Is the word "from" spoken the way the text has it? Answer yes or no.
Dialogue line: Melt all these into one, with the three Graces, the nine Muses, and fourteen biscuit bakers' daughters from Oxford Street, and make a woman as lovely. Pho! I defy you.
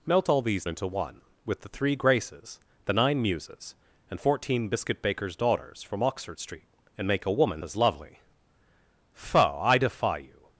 yes